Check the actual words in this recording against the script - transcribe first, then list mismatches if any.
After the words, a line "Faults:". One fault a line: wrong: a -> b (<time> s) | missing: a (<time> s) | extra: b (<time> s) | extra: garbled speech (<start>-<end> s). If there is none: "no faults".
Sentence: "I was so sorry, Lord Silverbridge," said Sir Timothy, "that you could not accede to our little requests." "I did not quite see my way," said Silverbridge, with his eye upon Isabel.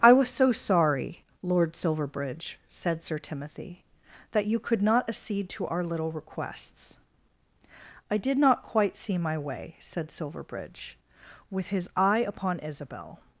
"I was so sorry, Lord Silverbridge," said Sir Timothy, "that you could not accede to our little requests." "I did not quite see my way," said Silverbridge, with his eye upon Isabel.
Faults:
no faults